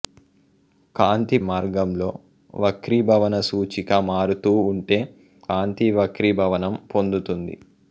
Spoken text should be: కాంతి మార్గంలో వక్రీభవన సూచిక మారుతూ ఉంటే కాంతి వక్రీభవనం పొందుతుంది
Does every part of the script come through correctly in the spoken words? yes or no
yes